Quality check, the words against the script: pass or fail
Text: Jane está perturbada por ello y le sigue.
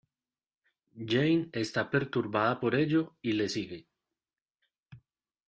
pass